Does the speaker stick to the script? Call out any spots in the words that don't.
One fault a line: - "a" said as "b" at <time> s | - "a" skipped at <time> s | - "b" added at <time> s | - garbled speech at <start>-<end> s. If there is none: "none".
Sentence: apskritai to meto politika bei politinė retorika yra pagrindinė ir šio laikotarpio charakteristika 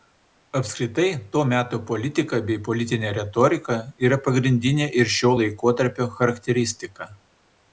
none